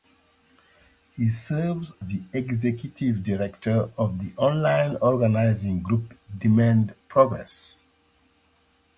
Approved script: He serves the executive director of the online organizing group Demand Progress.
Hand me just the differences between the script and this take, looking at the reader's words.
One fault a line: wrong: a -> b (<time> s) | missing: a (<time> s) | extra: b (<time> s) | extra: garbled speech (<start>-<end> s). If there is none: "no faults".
no faults